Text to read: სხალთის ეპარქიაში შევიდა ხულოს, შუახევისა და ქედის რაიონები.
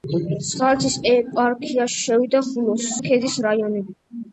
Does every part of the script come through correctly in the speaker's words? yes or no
no